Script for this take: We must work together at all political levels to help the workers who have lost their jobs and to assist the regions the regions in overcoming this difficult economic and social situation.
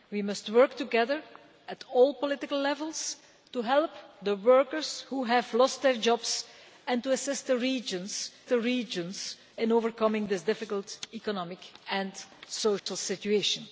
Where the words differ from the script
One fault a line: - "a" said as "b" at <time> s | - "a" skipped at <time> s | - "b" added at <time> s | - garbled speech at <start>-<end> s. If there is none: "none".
none